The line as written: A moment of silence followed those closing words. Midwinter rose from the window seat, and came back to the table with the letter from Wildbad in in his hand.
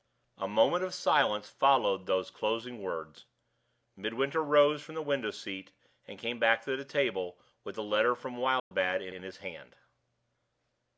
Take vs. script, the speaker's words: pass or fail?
pass